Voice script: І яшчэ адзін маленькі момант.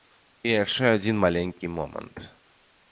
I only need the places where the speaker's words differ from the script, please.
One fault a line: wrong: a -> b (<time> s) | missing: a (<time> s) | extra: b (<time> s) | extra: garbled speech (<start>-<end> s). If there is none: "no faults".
no faults